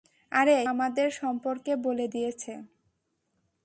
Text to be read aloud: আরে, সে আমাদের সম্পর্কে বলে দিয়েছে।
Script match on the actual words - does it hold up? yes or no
no